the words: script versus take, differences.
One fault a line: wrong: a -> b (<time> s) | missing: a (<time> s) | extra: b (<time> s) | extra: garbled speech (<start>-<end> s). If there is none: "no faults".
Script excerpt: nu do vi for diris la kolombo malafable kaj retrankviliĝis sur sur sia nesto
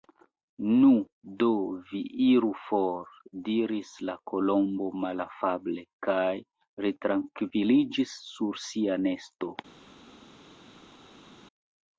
extra: iru (2.3 s)
missing: sur (8.6 s)